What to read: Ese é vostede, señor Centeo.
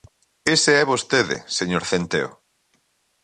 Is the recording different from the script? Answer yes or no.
no